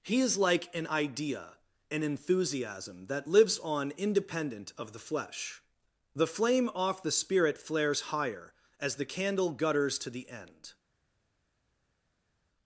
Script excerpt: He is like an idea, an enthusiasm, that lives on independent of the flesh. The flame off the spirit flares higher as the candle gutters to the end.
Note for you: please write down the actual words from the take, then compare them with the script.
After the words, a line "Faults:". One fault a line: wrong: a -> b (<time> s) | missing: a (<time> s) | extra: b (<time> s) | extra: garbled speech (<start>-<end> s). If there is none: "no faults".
He is like an idea, an enthusiasm, that lives on independent of the flesh. The flame off the spirit flares higher as the candle gutters to the end.
Faults:
no faults